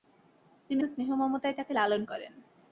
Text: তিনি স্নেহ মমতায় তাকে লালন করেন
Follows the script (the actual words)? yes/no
yes